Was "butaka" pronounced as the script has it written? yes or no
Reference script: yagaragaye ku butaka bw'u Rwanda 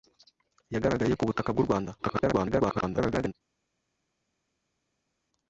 yes